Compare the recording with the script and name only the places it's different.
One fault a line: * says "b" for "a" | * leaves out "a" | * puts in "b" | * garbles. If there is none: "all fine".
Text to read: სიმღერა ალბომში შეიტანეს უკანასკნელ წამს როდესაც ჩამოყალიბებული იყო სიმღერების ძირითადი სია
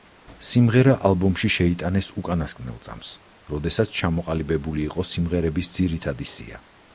all fine